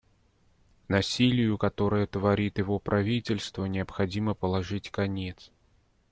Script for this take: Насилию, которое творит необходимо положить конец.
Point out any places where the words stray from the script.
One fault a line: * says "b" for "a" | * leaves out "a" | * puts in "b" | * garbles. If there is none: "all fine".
* puts in "его правительство"